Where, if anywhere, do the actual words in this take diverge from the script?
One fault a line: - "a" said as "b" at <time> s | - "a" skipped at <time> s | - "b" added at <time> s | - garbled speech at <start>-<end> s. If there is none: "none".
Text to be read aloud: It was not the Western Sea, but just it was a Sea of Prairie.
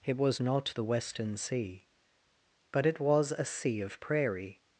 - "just" skipped at 2.9 s